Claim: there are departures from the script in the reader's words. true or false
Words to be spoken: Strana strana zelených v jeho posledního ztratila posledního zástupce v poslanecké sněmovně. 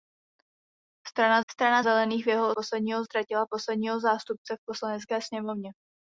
false